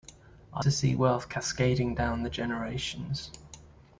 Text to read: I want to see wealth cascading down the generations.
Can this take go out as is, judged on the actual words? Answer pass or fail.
fail